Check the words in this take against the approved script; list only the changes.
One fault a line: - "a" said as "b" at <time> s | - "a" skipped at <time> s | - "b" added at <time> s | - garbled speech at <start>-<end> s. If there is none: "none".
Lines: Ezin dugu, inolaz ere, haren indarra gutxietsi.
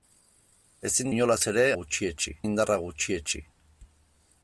- "dugu" skipped at 1.1 s
- "haren" said as "gutxietsi" at 1.8 s